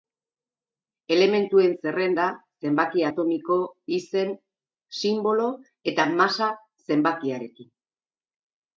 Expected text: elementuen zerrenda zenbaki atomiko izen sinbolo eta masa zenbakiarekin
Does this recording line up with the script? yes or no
yes